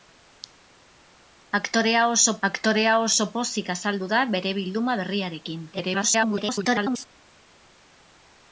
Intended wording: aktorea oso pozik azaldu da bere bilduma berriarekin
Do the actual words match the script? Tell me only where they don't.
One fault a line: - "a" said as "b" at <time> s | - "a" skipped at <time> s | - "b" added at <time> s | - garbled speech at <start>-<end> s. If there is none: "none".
- "aktorea oso" added at 2.5 s
- garbled speech at 5.7-7.0 s